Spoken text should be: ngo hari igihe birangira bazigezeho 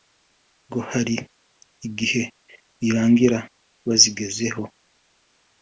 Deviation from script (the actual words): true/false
false